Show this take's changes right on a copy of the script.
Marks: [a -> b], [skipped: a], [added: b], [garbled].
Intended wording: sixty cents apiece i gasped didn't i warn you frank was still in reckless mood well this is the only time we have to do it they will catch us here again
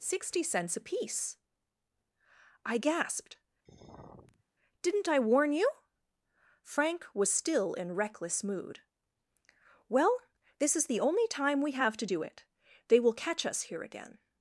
sixty cents apiece i gasped didn't i warn you frank was still in reckless mood well this is the only time we have to do it they will catch us here again